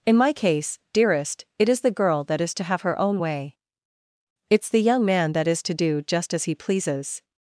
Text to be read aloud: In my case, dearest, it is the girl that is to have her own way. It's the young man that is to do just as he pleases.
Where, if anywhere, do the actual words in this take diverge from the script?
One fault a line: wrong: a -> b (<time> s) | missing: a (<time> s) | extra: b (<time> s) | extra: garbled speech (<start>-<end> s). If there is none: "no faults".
no faults